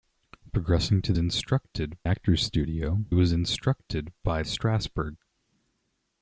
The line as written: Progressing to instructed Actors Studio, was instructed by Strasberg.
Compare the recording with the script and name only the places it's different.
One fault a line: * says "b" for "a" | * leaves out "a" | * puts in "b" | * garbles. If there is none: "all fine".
all fine